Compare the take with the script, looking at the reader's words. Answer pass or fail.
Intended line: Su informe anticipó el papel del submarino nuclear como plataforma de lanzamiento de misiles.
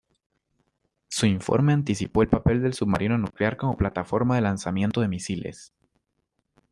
pass